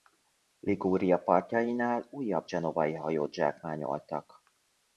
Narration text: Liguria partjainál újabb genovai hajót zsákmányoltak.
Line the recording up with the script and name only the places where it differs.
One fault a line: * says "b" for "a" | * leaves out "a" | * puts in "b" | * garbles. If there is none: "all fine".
all fine